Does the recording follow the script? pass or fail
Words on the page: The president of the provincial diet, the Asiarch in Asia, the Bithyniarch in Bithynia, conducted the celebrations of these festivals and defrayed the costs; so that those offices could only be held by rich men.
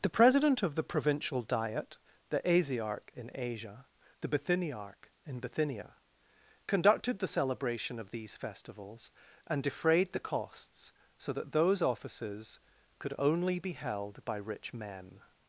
fail